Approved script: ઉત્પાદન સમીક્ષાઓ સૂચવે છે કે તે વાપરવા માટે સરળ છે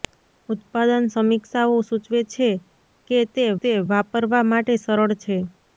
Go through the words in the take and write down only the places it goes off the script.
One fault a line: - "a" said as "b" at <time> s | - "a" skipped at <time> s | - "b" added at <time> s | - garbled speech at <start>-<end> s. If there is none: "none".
- "તે" added at 3.6 s